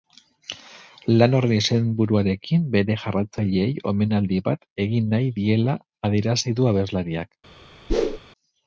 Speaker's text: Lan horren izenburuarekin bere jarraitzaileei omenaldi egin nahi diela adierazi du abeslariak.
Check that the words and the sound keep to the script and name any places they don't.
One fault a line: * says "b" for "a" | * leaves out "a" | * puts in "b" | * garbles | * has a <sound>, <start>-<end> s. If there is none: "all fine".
* puts in "bat"
* has a whoosh, 7.9-8.2 s